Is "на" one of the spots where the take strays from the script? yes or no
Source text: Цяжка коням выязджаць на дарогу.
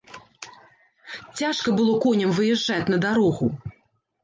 no